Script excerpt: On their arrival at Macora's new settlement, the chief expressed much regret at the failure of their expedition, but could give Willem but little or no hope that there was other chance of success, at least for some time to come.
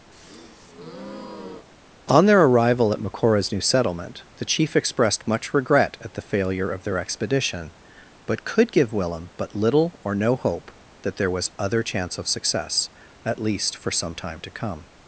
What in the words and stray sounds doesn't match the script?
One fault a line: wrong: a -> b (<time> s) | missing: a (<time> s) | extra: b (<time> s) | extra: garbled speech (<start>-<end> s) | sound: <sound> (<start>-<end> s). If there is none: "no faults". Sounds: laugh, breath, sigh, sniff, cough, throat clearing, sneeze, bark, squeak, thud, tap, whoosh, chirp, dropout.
sound: breath (0.1-1.7 s)